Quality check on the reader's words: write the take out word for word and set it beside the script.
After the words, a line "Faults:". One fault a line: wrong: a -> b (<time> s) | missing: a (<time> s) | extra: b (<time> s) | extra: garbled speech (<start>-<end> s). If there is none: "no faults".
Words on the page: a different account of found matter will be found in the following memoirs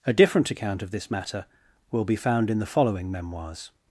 a different account of this matter will be found in the following memoirs
Faults:
wrong: found -> this (0.9 s)